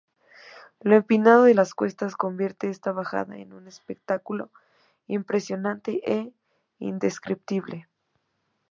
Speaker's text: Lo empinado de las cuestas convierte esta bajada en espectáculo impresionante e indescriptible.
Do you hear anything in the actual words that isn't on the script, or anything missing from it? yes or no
yes